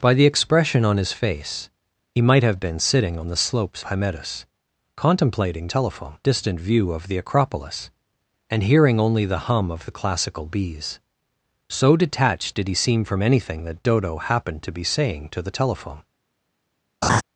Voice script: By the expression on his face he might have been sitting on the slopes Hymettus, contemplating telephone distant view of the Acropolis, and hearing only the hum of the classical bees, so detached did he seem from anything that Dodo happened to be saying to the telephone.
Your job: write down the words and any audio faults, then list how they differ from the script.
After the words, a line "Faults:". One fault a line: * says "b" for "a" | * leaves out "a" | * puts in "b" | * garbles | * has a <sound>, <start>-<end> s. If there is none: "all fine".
By the expression on his face he might have been sitting on the slopes Hymettus, contemplating telephone distant view of the Acropolis, and hearing only the hum of the classical bees, so detached did he seem from anything that Dodo happened to be saying to the telephone.
Faults:
* has a laugh, 17.0-17.2 s